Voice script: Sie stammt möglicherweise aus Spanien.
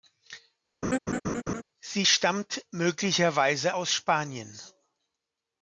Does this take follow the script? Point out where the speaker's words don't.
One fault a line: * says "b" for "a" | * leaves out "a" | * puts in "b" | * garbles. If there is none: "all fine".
all fine